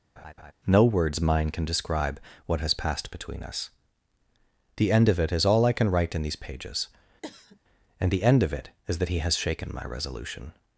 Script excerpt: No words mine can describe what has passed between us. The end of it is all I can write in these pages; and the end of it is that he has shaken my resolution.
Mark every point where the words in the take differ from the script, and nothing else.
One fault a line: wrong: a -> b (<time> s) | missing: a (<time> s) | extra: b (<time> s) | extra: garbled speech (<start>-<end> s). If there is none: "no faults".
no faults